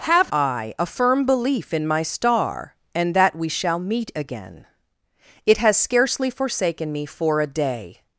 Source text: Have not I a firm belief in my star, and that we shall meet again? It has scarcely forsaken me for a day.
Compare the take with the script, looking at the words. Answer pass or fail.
fail